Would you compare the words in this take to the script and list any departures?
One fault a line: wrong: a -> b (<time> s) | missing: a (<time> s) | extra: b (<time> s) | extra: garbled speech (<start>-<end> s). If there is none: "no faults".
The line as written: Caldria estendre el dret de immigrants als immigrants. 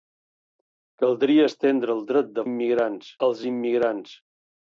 no faults